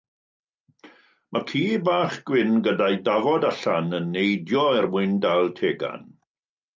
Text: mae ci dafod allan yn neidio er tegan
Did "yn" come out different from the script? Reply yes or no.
no